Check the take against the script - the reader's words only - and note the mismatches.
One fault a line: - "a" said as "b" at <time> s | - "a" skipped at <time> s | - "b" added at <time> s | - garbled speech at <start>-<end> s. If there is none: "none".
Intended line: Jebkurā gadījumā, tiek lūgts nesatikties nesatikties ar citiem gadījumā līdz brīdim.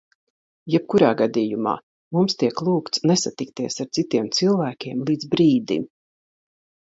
- "mums" added at 2.2 s
- "nesatikties" skipped at 3.8 s
- "gadījumā" said as "cilvēkiem" at 4.4 s